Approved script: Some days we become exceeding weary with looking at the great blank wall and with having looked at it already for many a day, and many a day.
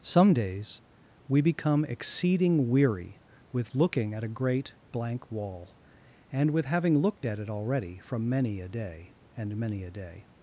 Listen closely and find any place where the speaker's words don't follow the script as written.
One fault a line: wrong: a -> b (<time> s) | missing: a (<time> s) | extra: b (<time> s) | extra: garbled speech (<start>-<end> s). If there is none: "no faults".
wrong: the -> a (4.2 s)
wrong: for -> from (8.0 s)